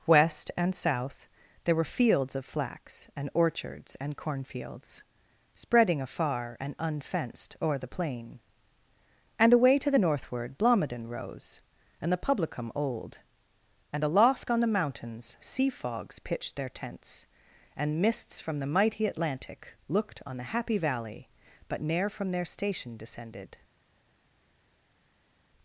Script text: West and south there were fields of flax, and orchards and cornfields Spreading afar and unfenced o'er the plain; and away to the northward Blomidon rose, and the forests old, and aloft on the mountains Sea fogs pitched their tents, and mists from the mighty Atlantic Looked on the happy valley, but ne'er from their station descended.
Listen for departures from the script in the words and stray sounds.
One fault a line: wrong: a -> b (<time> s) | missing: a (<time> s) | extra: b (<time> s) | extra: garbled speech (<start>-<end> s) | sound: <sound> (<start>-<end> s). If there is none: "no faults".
wrong: forests -> publicum (12.2 s)